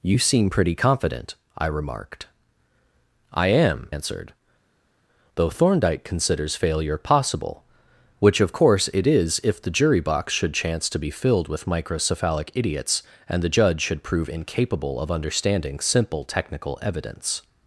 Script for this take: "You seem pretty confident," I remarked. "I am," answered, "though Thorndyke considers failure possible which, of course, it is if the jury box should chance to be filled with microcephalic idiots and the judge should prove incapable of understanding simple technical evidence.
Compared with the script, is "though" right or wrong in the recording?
right